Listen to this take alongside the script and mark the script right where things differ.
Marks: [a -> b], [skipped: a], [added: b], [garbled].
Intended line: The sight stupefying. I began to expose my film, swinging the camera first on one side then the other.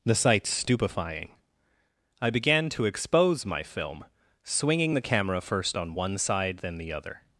The sight stupefying. I began to expose my film, swinging the camera first on one side then the other.